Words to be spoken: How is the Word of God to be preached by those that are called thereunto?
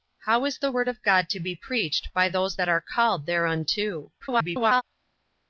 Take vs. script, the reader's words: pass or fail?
fail